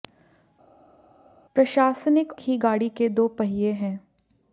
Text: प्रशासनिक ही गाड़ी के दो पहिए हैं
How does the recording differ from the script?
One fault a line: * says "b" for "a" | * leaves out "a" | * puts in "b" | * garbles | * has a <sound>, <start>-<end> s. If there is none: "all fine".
all fine